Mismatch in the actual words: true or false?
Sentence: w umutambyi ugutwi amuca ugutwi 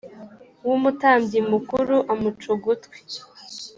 true